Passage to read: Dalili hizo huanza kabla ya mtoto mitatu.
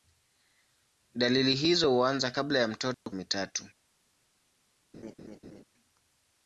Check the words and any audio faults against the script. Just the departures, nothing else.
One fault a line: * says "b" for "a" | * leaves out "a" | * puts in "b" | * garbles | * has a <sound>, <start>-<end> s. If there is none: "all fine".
* has a dropout, 2.9-3.1 s
* has a laugh, 4.9-5.6 s